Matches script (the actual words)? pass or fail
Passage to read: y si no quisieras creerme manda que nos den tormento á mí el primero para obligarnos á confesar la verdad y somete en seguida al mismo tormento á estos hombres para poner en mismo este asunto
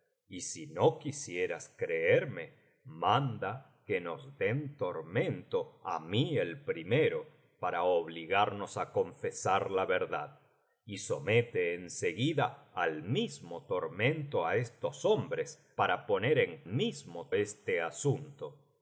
pass